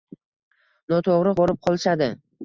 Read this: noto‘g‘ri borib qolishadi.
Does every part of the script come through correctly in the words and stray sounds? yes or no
yes